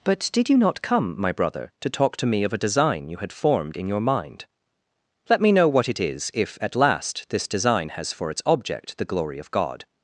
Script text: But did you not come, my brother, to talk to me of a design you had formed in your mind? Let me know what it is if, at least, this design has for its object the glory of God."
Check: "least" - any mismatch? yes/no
yes